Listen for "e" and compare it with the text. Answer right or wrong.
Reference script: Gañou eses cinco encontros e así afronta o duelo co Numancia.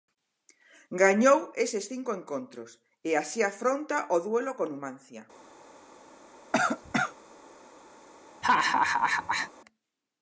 right